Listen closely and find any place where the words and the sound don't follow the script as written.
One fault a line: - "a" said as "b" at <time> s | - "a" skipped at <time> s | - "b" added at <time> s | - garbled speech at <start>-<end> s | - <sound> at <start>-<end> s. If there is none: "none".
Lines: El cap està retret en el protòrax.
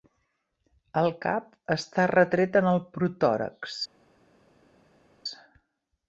none